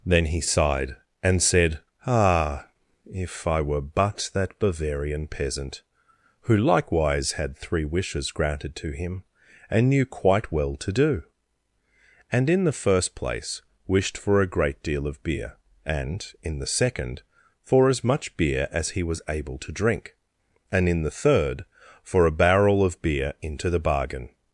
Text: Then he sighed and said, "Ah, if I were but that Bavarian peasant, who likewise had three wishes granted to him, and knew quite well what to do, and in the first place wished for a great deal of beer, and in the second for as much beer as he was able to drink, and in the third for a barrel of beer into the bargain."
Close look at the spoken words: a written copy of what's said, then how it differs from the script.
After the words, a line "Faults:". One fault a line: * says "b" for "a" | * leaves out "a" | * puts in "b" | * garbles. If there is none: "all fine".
Then he sighed and said, "Ah, if I were but that Bavarian peasant, who likewise had three wishes granted to him, and knew quite well to do, and in the first place wished for a great deal of beer, and in the second for as much beer as he was able to drink, and in the third for a barrel of beer into the bargain."
Faults:
* leaves out "what"